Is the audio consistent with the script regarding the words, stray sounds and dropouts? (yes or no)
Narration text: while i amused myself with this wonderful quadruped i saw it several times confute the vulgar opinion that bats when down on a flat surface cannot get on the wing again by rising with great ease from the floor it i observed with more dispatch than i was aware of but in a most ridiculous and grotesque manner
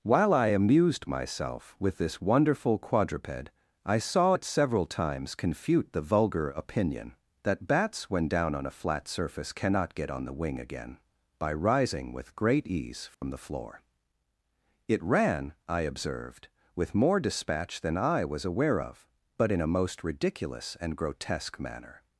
no